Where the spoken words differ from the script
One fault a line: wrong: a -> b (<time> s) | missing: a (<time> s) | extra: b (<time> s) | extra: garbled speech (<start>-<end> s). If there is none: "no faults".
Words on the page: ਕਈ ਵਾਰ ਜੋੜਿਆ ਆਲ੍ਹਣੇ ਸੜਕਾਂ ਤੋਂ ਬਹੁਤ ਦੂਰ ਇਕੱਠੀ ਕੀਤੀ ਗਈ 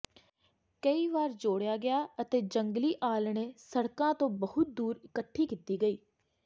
extra: ਗਿਆ ਅਤੇ ਜੰਗਲੀ (1.8 s)